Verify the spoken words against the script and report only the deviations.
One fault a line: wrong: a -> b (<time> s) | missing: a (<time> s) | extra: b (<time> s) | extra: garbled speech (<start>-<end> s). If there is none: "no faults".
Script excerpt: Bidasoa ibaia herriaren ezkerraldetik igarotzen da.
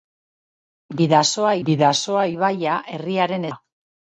extra: bidasoa (1.7 s)
missing: ezkerraldetik igarotzen (3.5 s)